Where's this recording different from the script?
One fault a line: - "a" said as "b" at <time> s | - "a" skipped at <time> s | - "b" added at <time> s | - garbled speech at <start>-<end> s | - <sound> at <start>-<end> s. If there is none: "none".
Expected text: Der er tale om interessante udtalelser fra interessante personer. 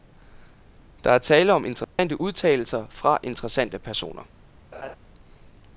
- dropout at 1.8-2.0 s
- laugh at 4.7-5.0 s